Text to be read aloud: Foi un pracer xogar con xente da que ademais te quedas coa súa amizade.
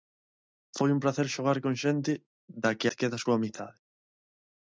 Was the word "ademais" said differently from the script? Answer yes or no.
yes